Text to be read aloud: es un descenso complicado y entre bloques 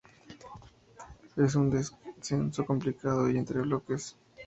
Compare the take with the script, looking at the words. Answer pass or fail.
pass